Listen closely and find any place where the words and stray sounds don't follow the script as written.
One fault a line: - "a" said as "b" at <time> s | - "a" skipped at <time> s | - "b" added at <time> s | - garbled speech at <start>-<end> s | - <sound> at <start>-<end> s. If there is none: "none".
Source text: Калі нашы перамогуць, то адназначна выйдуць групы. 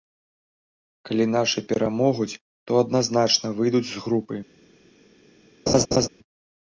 - "з" added at 3.9 s
- laugh at 5.7-6.1 s